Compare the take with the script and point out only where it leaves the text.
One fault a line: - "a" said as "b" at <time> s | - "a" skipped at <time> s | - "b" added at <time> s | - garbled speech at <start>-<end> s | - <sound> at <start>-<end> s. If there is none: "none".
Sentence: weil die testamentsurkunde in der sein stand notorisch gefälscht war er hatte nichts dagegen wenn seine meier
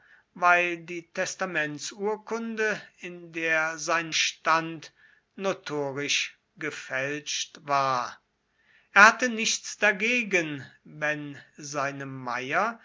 none